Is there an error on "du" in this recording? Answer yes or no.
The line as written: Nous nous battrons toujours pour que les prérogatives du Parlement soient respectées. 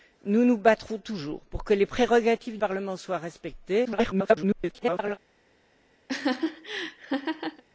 yes